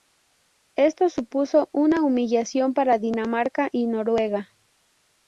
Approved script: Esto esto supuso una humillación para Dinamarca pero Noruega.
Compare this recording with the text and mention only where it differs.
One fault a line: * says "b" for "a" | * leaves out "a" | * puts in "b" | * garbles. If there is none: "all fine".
* leaves out "esto"
* says "y" for "pero"